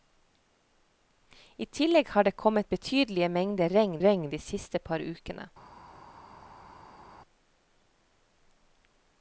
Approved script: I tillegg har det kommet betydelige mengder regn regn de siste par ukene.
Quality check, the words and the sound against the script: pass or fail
pass